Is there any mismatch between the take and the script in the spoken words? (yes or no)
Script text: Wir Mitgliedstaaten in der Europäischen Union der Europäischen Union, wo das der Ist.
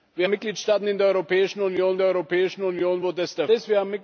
no